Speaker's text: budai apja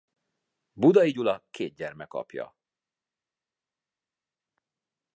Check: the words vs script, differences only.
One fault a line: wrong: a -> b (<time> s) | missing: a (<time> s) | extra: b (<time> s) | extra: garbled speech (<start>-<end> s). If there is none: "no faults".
extra: gyula két gyermek (1.1 s)